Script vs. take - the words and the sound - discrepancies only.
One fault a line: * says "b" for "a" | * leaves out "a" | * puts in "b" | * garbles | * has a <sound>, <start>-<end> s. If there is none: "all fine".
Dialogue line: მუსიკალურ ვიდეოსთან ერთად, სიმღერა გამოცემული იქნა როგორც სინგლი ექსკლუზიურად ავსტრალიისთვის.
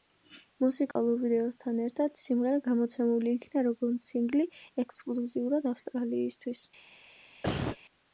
* has a dropout, 0.9-1.0 s
* has a cough, 7.4-7.8 s